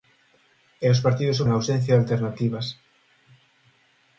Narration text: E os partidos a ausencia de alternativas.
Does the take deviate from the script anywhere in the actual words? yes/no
no